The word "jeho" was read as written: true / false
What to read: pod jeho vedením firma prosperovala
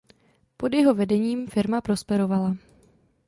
true